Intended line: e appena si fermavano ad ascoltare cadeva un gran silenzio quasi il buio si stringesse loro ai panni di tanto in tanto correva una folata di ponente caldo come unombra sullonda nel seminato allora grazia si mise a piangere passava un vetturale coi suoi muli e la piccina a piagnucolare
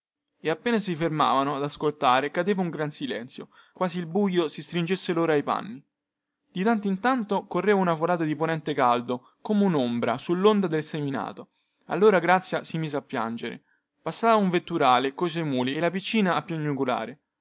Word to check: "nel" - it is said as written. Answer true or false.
false